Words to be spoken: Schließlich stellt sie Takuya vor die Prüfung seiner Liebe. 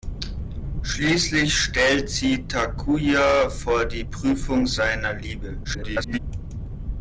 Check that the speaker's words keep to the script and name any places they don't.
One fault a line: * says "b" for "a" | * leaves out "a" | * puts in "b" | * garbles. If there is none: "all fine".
* garbles